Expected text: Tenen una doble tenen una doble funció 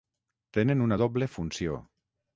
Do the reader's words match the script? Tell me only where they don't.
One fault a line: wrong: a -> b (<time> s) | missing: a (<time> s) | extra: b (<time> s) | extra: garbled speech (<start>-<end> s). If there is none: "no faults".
missing: tenen una doble (1.3 s)